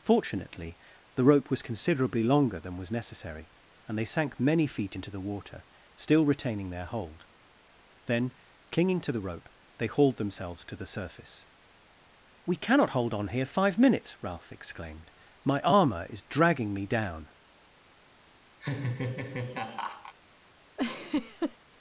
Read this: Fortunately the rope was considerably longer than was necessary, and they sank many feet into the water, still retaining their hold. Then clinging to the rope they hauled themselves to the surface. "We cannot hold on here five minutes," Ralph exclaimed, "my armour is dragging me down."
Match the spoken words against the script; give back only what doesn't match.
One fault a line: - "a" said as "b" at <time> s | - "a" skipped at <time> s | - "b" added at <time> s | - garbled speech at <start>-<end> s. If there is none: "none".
none